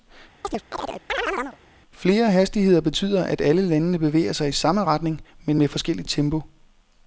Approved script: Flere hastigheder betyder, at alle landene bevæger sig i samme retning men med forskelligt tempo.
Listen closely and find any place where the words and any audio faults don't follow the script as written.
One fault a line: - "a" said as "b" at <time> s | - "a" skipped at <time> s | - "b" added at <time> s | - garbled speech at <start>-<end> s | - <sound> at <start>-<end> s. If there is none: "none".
- chirp at 0.4-1.6 s